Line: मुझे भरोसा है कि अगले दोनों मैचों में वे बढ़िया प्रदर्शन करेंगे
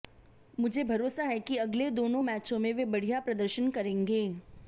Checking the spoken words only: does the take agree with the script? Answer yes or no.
yes